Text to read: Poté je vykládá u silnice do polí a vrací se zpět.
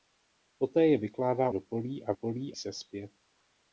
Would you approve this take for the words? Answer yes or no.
no